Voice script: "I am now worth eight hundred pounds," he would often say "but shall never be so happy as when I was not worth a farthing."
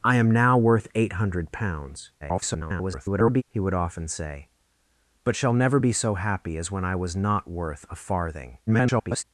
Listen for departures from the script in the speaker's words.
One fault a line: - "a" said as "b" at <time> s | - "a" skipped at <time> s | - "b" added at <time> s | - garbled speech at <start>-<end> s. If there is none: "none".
- garbled speech at 2.2-3.4 s
- garbled speech at 8.7-9.2 s